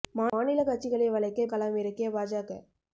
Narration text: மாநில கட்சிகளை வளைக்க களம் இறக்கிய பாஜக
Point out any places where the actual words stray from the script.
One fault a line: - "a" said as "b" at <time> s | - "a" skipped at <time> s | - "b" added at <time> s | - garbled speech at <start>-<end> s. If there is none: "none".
none